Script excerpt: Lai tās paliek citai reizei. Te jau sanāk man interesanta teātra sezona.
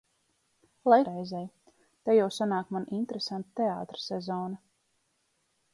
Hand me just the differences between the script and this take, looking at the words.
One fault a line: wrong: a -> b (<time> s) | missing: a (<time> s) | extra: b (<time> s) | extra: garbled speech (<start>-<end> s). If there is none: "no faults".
missing: tās paliek citai (1.0 s)